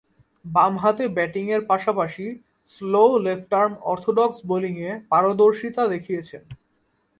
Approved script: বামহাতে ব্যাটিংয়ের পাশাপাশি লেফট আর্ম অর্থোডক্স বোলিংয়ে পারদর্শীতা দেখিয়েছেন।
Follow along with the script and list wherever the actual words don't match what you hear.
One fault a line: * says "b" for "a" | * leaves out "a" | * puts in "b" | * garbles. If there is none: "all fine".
* puts in "স্লো"